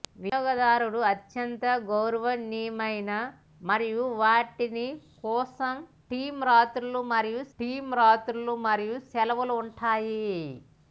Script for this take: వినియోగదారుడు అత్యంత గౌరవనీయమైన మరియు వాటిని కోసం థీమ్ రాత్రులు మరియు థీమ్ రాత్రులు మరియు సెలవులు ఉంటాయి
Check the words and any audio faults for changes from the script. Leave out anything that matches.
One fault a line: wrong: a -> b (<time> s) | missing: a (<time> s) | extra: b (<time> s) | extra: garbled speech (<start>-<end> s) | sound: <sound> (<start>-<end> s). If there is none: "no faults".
no faults